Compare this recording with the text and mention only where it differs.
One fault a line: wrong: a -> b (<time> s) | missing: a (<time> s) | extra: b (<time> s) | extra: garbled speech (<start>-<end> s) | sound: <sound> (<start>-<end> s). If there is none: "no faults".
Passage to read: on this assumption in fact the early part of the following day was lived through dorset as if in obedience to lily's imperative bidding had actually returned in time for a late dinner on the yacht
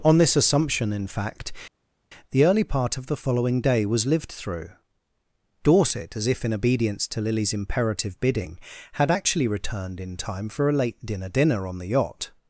extra: dinner (11.3 s)